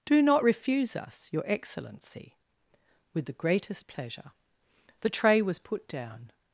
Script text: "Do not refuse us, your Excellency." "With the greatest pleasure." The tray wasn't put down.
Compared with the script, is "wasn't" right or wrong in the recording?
wrong